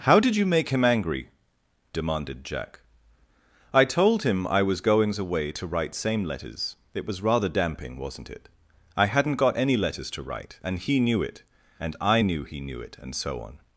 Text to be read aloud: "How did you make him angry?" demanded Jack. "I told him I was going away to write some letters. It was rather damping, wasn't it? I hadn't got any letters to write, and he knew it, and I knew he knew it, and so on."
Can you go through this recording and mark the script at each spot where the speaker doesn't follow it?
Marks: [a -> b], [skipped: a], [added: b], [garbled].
"How did you make him angry?" demanded Jack. "I told him I was [going -> goings] away to write [some -> same] letters. It was rather damping, wasn't it? I hadn't got any letters to write, and he knew it, and I knew he knew it, and so on."